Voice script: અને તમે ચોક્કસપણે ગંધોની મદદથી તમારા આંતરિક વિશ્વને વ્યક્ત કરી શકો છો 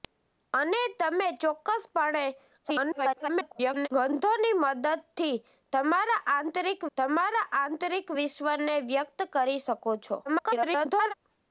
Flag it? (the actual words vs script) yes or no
yes